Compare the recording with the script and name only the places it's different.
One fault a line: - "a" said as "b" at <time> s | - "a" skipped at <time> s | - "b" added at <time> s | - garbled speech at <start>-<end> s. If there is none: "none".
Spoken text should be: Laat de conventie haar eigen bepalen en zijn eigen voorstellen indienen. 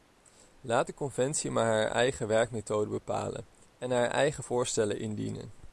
- "maar" added at 1.5 s
- "werkmethode" added at 2.3 s
- "zijn" said as "haar" at 3.9 s